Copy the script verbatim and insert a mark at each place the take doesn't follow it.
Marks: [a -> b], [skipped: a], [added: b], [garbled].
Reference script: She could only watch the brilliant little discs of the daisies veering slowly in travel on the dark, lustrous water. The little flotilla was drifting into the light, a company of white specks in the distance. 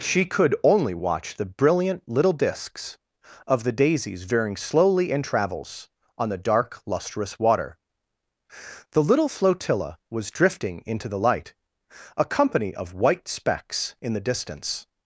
She could only watch the brilliant little discs of the daisies veering slowly in [travel -> travels] on the dark, lustrous water. The little flotilla was drifting into the light, a company of white specks in the distance.